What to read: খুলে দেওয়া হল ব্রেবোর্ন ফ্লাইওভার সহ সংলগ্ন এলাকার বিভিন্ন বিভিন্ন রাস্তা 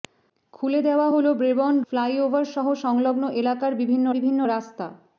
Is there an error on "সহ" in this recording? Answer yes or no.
no